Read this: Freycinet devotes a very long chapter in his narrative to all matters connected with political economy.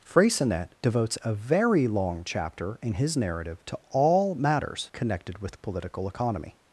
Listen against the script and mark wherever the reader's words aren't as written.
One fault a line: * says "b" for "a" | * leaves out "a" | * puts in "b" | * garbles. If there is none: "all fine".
all fine